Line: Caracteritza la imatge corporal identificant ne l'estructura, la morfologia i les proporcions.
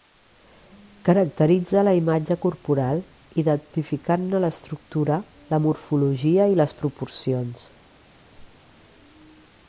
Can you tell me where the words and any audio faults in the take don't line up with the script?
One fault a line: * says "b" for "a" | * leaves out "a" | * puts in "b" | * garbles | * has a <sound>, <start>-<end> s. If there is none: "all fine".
* has a squeak, 8.1-8.7 s